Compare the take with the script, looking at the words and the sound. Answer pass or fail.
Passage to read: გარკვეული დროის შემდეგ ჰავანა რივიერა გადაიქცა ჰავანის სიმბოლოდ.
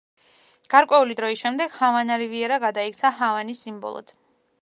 pass